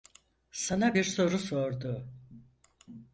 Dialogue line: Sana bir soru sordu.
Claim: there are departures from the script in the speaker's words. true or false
false